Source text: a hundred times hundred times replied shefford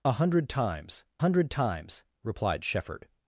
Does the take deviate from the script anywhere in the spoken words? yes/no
no